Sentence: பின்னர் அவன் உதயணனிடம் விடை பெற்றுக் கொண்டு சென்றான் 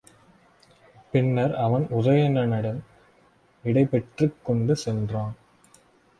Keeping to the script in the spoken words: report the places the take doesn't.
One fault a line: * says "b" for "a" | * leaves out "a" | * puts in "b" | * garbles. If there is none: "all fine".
all fine